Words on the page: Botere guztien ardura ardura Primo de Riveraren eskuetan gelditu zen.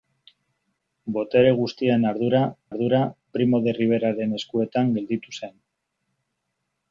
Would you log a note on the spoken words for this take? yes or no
no